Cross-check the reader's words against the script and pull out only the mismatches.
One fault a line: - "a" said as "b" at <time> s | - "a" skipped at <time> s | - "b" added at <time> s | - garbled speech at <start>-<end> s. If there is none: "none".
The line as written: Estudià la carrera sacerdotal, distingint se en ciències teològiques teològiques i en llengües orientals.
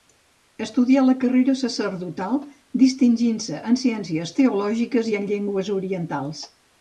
- "teològiques" skipped at 5.1 s